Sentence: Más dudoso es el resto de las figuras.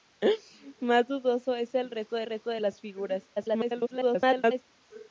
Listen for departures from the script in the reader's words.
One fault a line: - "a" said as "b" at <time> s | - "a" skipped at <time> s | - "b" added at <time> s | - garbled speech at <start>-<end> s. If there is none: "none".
- "resto de" added at 2.3 s
- garbled speech at 3.3-4.6 s